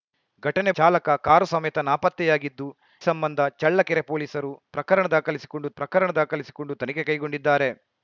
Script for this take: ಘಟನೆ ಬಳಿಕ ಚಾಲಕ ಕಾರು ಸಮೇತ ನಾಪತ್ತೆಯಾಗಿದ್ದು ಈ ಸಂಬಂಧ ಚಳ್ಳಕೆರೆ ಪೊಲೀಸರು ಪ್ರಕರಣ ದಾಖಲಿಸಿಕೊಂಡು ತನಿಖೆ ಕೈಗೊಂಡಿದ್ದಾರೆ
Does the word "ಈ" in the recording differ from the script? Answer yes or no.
yes